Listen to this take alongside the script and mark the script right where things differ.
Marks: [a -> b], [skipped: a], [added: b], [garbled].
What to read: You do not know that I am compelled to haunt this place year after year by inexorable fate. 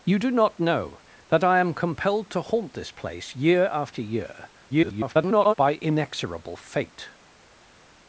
You do not know that I am compelled to haunt this place year after year [garbled] by inexorable fate.